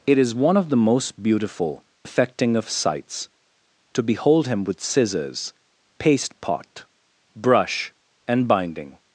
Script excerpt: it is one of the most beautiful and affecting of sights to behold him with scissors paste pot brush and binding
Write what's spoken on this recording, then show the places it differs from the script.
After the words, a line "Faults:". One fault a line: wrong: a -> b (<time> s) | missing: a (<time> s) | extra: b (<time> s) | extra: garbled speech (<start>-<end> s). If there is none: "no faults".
it is one of the most beautiful affecting of sights to behold him with scissors paste pot brush and binding
Faults:
missing: and (1.8 s)